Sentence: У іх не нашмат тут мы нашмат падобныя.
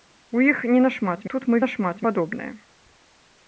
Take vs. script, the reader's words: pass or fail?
pass